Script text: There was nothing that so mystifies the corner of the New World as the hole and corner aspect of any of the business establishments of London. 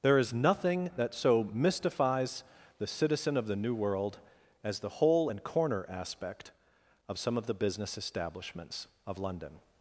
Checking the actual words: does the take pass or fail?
fail